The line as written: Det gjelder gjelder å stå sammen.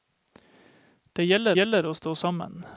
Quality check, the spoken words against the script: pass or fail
pass